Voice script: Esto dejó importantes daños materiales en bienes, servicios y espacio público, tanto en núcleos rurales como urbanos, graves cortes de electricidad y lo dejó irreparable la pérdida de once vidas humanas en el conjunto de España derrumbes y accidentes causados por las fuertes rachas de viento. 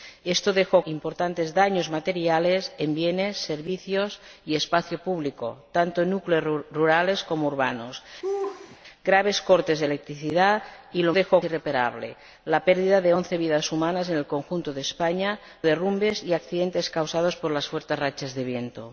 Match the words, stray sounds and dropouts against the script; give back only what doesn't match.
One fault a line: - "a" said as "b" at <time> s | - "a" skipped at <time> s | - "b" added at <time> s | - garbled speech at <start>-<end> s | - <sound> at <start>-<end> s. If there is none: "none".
- laugh at 8.2-8.8 s